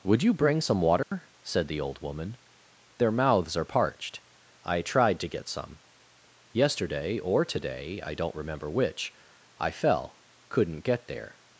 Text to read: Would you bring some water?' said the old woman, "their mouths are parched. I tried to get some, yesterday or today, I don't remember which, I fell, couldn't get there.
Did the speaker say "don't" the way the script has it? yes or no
yes